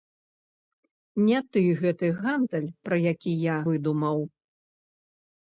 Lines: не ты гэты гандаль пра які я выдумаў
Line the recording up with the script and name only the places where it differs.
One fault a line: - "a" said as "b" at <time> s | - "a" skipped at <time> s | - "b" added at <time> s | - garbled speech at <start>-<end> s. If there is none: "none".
none